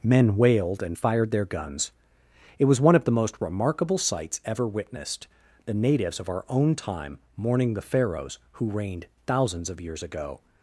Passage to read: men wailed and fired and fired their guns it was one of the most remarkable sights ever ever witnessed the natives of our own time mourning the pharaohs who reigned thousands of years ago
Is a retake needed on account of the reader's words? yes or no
yes